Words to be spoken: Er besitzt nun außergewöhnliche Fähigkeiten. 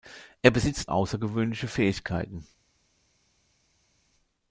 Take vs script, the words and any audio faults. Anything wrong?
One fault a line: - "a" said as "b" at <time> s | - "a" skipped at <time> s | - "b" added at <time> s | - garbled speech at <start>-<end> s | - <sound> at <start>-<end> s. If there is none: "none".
- "nun" skipped at 0.9 s